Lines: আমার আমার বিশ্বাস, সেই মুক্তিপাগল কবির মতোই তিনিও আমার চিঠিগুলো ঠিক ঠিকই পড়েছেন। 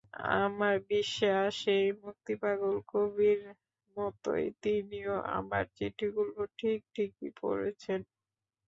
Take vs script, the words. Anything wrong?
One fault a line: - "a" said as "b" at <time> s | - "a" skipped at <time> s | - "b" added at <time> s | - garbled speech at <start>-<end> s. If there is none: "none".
- "আমার" skipped at 0.8 s